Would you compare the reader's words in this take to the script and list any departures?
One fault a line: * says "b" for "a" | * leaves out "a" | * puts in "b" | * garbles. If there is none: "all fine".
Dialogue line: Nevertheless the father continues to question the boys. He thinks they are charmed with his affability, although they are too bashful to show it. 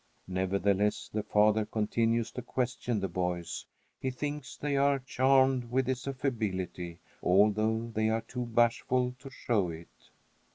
all fine